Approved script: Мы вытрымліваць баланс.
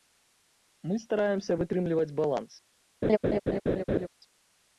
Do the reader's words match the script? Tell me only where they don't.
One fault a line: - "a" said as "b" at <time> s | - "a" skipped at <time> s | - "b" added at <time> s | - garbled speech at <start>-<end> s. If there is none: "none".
- "стараемся" added at 1.0 s